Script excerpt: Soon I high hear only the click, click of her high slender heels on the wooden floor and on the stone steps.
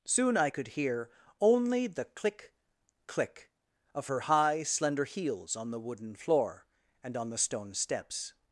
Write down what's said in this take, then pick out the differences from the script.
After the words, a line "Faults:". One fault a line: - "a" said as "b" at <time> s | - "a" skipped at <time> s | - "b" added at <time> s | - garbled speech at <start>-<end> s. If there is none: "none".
Soon I could hear only the click, click of her high slender heels on the wooden floor and on the stone steps.
Faults:
- "high" said as "could" at 0.5 s